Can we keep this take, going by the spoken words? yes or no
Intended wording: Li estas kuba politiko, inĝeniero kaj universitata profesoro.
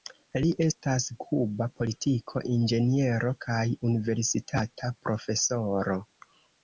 yes